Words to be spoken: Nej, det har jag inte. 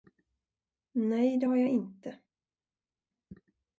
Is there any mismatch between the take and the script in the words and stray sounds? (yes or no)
no